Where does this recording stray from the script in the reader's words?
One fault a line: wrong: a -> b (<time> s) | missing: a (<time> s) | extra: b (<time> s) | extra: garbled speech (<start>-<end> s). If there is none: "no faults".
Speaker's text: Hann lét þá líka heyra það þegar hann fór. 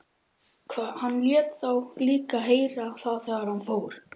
no faults